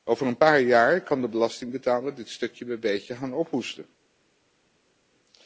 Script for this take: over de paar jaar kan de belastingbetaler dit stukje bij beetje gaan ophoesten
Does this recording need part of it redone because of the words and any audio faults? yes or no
yes